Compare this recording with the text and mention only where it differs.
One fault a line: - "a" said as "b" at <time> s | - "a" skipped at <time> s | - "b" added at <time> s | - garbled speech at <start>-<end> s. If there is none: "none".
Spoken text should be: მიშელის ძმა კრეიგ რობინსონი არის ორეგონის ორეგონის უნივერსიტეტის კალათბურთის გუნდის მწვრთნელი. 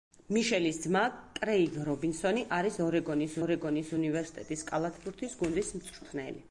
none